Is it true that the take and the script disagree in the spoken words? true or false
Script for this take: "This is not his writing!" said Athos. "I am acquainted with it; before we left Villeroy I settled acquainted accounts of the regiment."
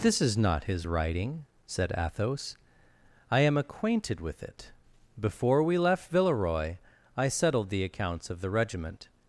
true